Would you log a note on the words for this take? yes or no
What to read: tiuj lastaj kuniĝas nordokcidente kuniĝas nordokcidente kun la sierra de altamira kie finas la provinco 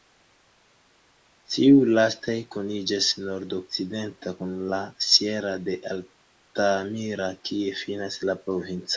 yes